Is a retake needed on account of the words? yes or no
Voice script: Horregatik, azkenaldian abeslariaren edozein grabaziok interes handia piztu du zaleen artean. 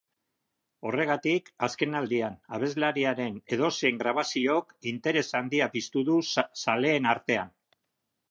no